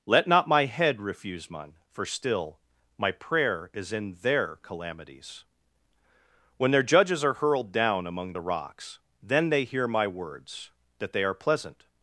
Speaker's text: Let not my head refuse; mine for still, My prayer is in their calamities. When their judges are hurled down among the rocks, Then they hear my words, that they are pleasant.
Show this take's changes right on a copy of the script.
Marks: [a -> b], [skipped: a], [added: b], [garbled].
Let not my head refuse; mine for still, My prayer is in their calamities. When their judges are hurled down among the rocks, Then they hear my words, that they are pleasant.